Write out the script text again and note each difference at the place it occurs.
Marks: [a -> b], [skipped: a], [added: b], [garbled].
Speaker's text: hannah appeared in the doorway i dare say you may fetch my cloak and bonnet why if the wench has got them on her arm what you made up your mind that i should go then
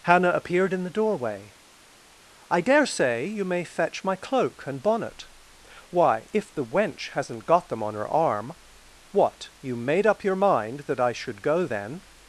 hannah appeared in the doorway i dare say you may fetch my cloak and bonnet why if the wench [has -> hasn't] got them on her arm what you made up your mind that i should go then